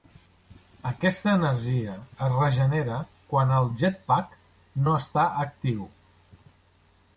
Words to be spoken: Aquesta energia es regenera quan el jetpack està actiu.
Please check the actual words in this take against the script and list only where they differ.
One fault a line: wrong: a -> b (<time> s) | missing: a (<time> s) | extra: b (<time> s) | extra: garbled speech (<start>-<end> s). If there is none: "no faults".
extra: no (4.9 s)